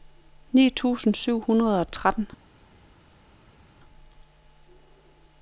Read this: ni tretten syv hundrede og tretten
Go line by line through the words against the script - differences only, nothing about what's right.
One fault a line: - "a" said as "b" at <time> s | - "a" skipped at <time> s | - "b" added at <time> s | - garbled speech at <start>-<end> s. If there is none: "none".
- "tretten" said as "tusind" at 0.7 s